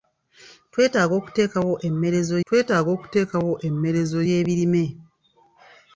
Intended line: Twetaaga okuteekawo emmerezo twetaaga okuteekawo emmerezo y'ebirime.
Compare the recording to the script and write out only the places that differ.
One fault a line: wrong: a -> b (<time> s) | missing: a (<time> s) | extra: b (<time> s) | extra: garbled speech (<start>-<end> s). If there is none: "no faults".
no faults